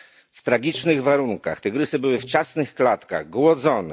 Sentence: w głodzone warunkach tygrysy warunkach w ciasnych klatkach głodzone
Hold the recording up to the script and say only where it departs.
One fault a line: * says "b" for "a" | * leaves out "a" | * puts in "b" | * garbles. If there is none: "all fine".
* says "tragicznych" for "głodzone"
* says "były" for "warunkach"